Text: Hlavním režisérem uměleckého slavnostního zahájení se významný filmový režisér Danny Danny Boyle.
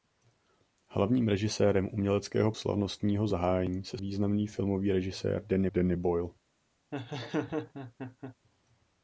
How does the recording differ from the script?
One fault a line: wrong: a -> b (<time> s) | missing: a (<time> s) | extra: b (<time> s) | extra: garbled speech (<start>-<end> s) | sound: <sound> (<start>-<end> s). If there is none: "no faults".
sound: laugh (6.9-8.4 s)